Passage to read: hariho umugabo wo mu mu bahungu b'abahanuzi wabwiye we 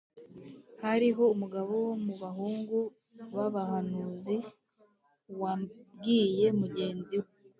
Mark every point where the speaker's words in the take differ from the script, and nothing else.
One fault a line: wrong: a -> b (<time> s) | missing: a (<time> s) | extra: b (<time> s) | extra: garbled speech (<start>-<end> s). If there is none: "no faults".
missing: mu (2.1 s)
extra: mugenzi (6.6 s)